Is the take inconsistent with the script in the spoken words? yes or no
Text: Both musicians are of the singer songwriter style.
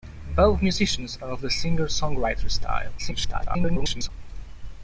yes